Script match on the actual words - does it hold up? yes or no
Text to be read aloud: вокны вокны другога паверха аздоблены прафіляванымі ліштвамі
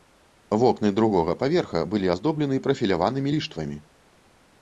no